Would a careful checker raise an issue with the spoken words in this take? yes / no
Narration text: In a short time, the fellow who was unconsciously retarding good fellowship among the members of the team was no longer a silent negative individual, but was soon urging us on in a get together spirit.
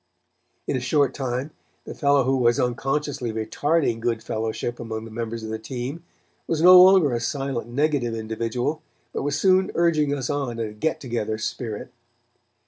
no